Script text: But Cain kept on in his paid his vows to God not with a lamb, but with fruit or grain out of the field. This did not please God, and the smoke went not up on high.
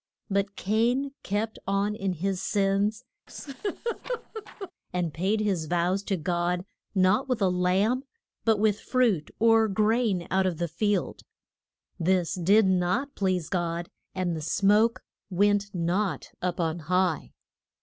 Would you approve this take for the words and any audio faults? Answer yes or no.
no